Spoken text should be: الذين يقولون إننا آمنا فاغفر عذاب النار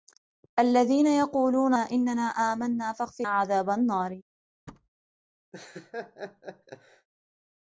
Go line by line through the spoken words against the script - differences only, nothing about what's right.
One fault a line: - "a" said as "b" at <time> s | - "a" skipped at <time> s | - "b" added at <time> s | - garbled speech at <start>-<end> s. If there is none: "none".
none